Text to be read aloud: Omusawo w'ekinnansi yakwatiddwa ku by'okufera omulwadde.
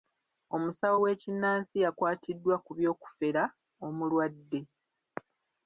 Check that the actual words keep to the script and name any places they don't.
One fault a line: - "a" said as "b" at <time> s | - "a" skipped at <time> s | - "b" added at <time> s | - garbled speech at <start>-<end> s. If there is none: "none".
none